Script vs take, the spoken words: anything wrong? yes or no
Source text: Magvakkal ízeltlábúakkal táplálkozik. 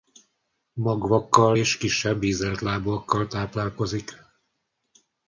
yes